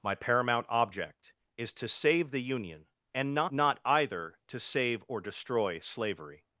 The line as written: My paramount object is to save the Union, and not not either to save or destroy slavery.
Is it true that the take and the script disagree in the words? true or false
false